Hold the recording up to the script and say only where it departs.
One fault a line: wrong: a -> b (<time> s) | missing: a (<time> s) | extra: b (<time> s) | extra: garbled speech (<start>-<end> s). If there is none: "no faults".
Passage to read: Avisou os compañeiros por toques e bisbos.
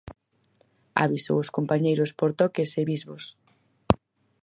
no faults